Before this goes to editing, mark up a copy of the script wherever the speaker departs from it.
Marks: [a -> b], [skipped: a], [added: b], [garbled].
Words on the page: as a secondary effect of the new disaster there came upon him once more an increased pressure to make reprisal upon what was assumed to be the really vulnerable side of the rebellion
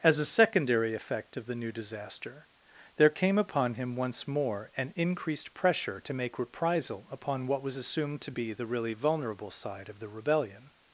as a secondary effect of the new disaster there came upon him once more an increased pressure to make reprisal upon what was assumed to be the really vulnerable side of the rebellion